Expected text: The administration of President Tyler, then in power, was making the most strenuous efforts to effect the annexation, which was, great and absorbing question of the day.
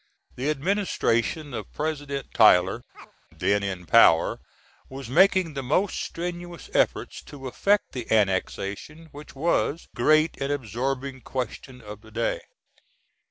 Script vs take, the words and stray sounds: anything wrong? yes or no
yes